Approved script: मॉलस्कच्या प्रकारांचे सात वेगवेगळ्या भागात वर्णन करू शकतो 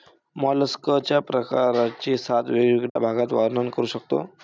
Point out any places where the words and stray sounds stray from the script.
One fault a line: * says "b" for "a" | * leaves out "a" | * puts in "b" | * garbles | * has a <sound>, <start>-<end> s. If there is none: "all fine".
* has a dropout, 2.9-3.0 s